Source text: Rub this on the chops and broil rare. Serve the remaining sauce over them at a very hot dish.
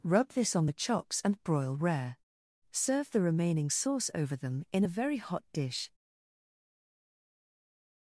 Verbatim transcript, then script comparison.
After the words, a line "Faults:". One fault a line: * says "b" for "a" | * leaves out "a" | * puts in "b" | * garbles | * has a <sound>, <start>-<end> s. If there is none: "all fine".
Rub this on the chops and broil rare. Serve the remaining sauce over them in a very hot dish.
Faults:
* says "in" for "at"